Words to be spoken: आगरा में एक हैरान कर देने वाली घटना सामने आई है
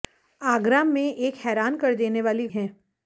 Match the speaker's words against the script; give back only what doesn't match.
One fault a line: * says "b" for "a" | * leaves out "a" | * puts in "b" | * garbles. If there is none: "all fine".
* leaves out "घटना सामने आई"